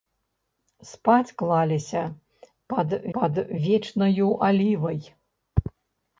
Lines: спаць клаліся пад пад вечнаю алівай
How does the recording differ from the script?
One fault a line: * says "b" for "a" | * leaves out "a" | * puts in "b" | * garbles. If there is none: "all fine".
all fine